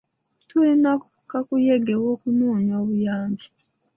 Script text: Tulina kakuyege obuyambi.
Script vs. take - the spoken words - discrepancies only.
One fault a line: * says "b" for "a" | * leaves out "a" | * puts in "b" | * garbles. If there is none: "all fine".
* puts in "w'okunoonya"